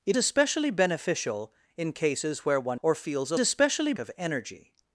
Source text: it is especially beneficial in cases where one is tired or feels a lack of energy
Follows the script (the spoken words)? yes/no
no